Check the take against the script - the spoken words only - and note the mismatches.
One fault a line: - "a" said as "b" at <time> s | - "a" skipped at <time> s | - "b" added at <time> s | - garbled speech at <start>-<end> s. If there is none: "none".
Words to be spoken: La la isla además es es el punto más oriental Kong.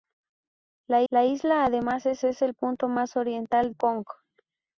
none